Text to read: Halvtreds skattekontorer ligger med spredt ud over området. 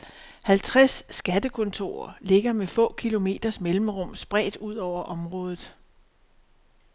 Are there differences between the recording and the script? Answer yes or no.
yes